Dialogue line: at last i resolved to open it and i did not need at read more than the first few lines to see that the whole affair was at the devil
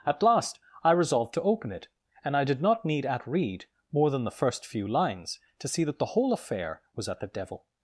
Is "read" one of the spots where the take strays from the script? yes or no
no